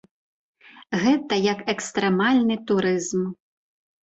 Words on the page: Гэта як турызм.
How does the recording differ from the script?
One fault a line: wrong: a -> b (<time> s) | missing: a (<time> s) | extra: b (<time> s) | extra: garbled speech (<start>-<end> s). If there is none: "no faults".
extra: экстрэмальны (1.7 s)